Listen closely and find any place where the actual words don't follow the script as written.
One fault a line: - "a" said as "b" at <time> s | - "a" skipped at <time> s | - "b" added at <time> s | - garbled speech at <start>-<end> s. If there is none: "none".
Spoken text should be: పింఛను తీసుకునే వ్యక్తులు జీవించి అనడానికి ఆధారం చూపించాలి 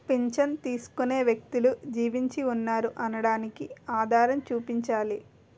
- "ఉన్నారు" added at 2.5 s